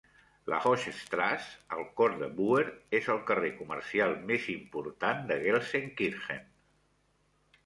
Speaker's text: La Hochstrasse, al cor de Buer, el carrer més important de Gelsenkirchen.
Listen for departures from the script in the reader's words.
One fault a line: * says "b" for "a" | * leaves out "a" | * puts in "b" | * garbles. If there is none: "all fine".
* puts in "és"
* puts in "comercial"